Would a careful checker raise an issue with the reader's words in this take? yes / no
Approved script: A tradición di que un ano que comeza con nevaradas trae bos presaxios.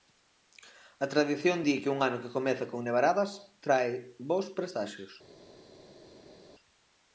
no